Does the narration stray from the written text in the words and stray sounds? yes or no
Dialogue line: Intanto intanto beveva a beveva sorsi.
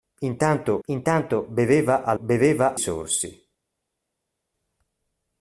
no